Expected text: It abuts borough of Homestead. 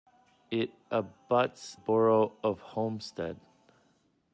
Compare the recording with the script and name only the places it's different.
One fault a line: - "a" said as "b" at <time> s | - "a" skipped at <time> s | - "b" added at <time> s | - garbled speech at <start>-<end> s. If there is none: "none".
none